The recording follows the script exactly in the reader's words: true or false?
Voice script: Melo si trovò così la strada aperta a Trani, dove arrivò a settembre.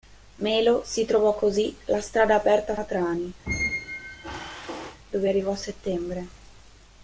true